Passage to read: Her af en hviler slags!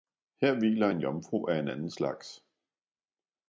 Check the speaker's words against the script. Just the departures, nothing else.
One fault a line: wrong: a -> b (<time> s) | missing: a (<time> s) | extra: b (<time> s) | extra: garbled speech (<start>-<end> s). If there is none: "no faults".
extra: hviler en jomfru (0.5 s)
wrong: hviler -> anden (1.6 s)